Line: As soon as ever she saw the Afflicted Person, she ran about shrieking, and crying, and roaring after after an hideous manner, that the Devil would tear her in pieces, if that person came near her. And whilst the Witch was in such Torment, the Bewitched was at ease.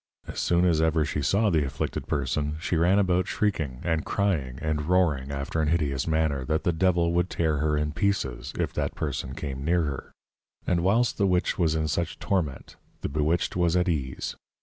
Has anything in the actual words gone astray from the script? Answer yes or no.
yes